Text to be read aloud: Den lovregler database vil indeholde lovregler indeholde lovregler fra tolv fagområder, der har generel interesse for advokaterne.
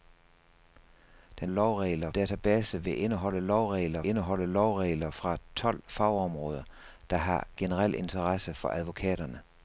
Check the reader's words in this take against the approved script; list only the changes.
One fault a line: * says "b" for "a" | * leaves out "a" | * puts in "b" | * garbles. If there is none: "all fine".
all fine